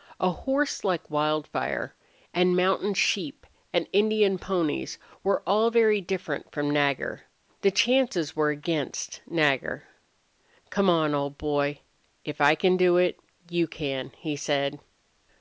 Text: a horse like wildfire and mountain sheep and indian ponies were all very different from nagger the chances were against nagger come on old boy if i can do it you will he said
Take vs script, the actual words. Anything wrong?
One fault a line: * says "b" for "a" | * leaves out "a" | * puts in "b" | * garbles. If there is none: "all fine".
* says "can" for "will"